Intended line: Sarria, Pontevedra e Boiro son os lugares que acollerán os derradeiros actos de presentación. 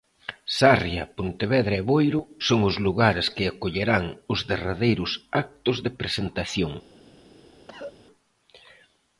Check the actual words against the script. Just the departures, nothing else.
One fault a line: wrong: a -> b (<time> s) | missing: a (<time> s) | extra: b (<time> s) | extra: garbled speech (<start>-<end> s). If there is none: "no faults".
no faults